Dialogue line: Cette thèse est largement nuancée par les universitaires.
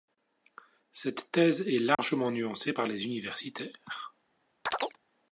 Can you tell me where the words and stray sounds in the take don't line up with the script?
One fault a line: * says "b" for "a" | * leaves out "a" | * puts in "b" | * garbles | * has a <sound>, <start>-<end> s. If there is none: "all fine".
* has a dropout, 1.9-2.0 s
* has a chirp, 4.7-5.0 s